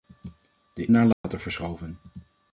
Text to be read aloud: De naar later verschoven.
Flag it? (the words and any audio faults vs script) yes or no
yes